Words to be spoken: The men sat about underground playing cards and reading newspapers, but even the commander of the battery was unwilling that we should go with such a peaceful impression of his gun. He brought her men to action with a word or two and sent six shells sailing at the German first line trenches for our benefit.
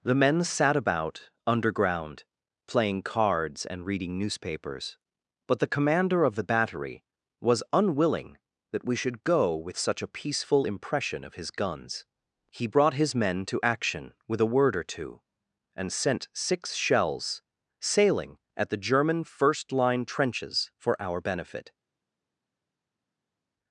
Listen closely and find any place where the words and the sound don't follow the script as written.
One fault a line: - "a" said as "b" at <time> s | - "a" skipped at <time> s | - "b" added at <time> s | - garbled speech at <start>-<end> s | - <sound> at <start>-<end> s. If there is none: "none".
- "even" skipped at 5.6 s
- "gun" said as "guns" at 11.5 s
- "her" said as "his" at 12.9 s